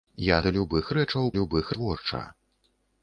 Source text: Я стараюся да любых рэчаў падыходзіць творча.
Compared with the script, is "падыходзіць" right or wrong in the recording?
wrong